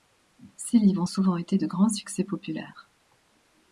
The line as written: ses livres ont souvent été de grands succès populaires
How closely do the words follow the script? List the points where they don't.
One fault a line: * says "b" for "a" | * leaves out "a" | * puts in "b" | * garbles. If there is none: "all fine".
all fine